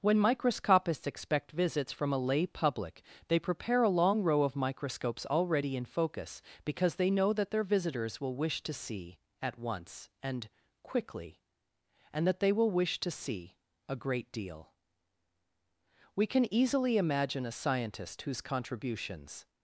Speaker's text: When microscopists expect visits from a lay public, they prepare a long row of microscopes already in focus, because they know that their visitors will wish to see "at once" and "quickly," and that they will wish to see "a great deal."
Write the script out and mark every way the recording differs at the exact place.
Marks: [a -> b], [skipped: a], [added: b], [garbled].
When microscopists expect visits from a lay public, they prepare a long row of microscopes already in focus, because they know that their visitors will wish to see "at once" and "quickly," and that they will wish to see "a great deal." [added: We can easily imagine a scientist whose contributions]